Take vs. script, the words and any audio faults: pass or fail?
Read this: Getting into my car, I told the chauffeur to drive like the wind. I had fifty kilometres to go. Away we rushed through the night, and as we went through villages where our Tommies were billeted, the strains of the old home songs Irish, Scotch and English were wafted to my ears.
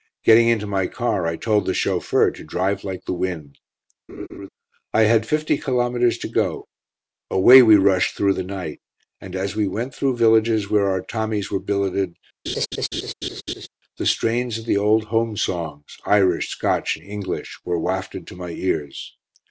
fail